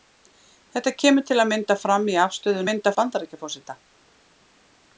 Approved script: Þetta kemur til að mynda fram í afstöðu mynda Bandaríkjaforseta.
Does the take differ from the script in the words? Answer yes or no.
no